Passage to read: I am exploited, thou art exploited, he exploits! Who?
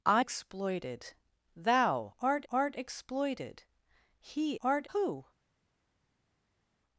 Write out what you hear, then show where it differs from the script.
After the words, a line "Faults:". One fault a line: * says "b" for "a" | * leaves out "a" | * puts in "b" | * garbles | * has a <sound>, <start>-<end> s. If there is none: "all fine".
I exploited, thou art art exploited, he art! Who?
Faults:
* leaves out "am"
* puts in "art"
* says "art" for "exploits"